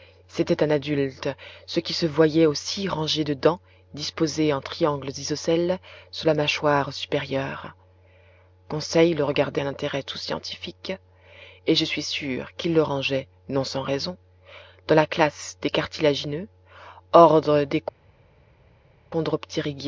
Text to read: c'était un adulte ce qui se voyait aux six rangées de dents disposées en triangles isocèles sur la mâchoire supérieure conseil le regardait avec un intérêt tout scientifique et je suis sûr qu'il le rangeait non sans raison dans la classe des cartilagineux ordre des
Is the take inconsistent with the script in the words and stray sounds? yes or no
yes